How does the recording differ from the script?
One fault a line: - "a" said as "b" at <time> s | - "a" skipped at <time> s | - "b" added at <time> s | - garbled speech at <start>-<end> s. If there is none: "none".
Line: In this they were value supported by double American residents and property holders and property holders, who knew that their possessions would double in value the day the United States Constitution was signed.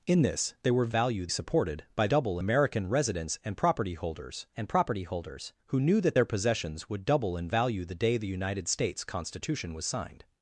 none